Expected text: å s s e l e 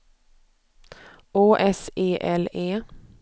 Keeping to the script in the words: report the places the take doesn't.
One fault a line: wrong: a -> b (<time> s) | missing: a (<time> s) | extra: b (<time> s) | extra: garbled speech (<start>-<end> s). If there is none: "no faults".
missing: s (1.9 s)